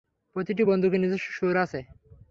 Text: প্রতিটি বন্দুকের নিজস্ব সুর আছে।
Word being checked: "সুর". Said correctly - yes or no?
yes